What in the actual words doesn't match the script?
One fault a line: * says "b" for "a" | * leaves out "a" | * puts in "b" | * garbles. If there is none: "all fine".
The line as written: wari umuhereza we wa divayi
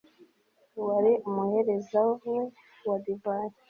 all fine